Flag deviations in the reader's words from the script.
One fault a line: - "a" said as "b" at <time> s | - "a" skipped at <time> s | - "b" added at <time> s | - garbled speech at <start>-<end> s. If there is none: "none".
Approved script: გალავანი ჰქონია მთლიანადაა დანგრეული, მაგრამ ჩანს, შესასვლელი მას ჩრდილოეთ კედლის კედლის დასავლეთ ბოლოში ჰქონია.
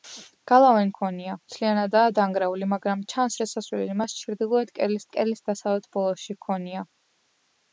none